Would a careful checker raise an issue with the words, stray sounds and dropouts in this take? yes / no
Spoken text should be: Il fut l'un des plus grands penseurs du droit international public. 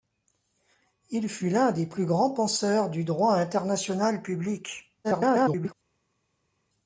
yes